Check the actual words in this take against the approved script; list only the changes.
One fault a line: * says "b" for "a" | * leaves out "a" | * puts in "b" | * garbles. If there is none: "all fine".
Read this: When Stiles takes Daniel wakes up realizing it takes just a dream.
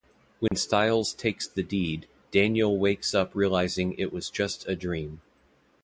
* puts in "the deed"
* says "was" for "takes"